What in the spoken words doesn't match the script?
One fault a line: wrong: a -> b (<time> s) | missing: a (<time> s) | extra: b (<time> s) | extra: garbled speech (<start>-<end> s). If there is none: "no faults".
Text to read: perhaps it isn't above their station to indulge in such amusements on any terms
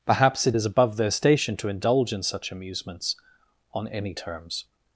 wrong: isn't -> is (0.5 s)